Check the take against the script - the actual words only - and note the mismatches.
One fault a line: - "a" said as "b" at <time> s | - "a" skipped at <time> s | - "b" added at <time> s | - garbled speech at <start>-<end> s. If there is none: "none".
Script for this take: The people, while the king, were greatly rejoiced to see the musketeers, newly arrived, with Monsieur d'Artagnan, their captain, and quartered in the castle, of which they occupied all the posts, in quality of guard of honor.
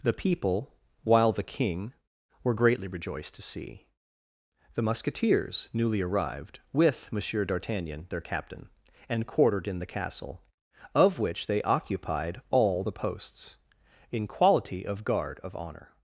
none